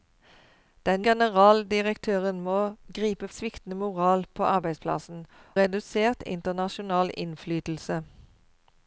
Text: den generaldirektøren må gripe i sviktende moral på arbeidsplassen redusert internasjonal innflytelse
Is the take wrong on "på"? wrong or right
right